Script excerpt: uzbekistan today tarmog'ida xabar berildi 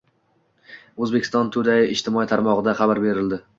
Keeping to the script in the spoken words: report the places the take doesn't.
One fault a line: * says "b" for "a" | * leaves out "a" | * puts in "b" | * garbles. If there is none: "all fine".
* puts in "ijtimoiy"